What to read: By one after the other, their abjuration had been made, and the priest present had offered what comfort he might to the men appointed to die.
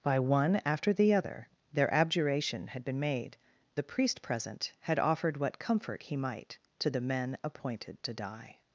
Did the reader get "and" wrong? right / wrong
wrong